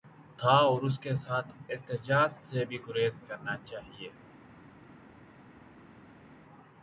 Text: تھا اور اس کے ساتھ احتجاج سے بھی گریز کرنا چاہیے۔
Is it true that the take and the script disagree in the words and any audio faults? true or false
false